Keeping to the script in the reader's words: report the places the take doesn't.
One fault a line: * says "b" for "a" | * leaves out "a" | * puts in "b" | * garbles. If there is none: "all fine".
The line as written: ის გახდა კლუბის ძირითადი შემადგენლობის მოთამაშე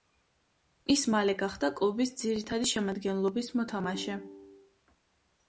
* puts in "მალე"